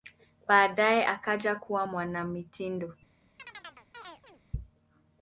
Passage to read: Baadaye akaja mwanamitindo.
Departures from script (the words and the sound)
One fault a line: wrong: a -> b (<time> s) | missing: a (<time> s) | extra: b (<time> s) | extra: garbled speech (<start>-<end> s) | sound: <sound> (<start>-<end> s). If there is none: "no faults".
extra: kuwa (1.5 s)
sound: chirp (3.4-4.4 s)